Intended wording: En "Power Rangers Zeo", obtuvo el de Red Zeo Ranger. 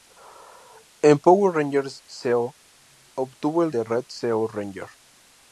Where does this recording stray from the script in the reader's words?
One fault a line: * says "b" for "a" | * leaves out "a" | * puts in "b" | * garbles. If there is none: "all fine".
all fine